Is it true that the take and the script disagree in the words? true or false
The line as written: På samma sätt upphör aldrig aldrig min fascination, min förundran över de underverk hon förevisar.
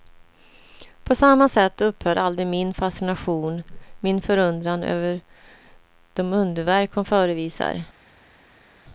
true